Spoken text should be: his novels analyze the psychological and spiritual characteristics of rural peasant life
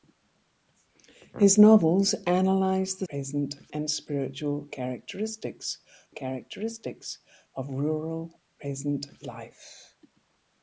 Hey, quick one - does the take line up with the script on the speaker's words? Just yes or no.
no